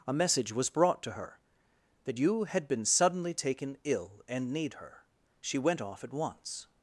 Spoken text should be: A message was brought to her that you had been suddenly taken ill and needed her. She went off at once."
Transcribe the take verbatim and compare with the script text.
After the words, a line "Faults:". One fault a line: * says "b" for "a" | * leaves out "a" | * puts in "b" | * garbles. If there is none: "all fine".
A message was brought to her that you had been suddenly taken ill and need her. She went off at once."
Faults:
* says "need" for "needed"